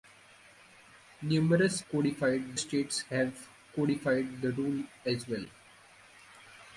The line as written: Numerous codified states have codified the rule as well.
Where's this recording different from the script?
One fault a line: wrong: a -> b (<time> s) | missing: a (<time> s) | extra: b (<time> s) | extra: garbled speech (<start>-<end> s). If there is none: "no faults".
no faults